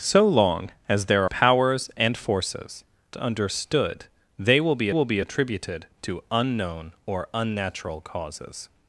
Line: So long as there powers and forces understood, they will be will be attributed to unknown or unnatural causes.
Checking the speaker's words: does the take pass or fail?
pass